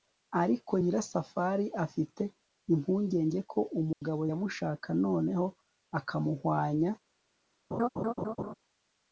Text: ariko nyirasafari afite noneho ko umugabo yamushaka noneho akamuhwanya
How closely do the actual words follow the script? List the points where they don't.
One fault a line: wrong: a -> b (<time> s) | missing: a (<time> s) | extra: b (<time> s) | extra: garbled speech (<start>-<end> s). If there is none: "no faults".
wrong: noneho -> impungenge (2.7 s)